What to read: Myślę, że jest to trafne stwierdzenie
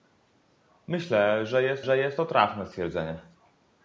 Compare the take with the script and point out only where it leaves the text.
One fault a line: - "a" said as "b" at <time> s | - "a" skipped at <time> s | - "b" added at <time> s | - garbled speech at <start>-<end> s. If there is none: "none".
- "że jest" added at 1.8 s